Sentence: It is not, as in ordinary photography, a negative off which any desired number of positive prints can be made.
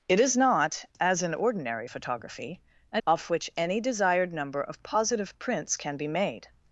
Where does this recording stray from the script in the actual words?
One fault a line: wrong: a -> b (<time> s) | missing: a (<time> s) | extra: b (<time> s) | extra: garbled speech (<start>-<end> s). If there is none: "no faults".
missing: negative (3.0 s)